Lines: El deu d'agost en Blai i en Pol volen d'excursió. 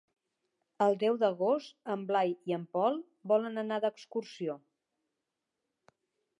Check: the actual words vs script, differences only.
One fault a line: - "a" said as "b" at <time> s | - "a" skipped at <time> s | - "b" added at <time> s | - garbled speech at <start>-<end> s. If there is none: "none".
- "anar" added at 3.6 s